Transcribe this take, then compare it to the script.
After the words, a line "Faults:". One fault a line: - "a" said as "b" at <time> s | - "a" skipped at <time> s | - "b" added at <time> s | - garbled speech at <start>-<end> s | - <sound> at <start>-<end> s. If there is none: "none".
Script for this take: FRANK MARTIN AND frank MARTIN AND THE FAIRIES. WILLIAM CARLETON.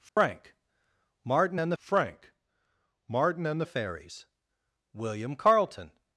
FRANK MARTIN AND frank MARTIN AND THE FAIRIES. WILLIAM CARLETON.
Faults:
- dropout at 0.1-0.2 s